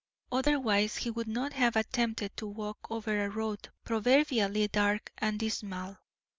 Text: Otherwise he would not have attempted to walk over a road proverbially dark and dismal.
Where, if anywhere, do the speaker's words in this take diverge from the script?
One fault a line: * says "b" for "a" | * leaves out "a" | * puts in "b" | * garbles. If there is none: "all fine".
all fine